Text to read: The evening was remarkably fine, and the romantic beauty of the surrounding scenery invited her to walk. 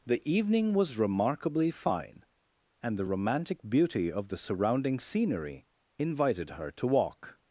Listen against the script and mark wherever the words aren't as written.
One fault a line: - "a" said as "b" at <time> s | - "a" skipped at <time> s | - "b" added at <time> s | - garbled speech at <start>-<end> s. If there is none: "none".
none